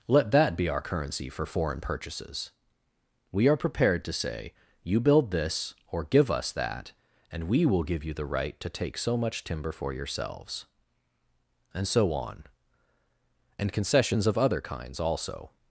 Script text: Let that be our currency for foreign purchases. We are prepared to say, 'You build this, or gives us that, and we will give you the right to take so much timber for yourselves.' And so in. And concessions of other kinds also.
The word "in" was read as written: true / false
false